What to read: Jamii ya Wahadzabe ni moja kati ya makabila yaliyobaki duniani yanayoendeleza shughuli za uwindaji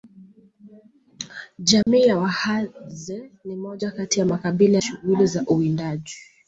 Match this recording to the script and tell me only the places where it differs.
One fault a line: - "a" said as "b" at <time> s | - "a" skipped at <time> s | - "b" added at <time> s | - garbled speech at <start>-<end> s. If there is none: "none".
- "yaliyobaki duniani yanayoendeleza" skipped at 4.8 s